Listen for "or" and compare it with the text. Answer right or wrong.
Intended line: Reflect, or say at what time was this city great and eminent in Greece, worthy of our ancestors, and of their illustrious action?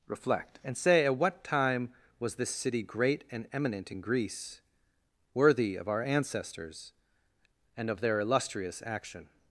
wrong